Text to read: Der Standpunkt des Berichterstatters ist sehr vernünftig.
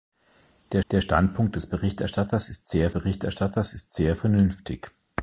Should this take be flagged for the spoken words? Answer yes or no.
yes